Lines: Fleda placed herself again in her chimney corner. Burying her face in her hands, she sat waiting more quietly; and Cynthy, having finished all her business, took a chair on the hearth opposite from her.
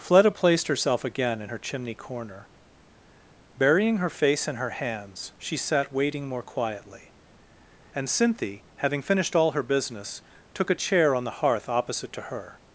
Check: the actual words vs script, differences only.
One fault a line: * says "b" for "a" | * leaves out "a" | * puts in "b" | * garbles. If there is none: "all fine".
* says "to" for "from"